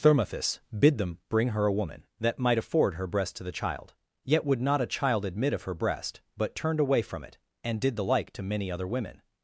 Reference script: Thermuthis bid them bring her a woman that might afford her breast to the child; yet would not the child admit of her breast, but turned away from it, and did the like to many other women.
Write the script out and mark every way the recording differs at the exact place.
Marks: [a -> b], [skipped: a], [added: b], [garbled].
Thermuthis bid them bring her a woman that might afford her breast to the child; yet would not [the -> a] child admit of her breast, but turned away from it, and did the like to many other women.